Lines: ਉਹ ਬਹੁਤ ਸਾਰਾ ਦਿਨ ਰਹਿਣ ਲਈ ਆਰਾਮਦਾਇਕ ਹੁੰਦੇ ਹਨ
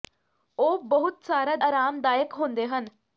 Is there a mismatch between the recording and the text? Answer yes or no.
yes